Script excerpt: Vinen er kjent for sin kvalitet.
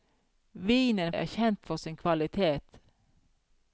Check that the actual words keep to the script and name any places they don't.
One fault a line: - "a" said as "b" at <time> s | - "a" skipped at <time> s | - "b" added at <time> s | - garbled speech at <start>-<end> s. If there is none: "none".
none